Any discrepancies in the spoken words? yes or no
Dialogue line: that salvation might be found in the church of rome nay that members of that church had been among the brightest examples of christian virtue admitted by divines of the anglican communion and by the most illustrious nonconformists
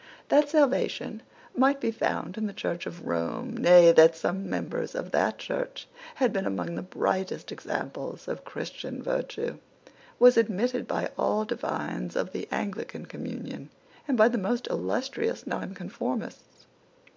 yes